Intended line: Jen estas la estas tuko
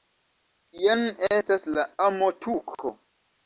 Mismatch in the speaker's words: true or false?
true